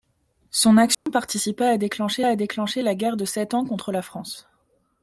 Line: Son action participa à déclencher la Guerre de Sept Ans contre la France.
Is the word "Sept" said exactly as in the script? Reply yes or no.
yes